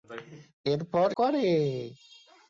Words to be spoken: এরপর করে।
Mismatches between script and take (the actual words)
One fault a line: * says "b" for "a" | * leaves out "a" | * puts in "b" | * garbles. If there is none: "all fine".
all fine